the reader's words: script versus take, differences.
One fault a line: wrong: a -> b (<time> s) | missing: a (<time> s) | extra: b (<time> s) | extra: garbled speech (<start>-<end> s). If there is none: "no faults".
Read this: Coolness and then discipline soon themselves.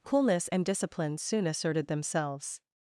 missing: then (0.6 s)
extra: asserted (1.5 s)